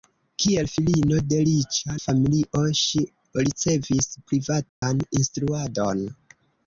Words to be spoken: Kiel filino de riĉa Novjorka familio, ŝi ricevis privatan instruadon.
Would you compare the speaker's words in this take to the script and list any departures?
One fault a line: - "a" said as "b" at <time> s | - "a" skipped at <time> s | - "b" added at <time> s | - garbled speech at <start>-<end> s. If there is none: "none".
- "Novjorka" skipped at 2.0 s